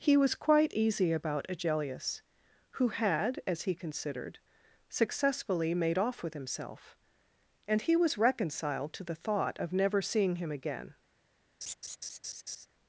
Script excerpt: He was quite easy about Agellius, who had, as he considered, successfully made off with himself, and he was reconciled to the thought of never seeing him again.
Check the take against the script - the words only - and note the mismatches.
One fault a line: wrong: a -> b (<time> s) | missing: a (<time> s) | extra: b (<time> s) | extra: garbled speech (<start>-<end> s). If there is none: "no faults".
no faults